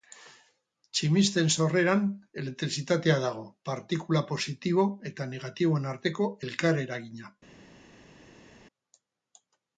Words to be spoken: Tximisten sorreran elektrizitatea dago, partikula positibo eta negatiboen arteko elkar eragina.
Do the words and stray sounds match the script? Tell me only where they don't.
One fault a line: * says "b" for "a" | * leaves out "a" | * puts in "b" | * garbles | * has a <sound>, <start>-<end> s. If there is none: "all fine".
all fine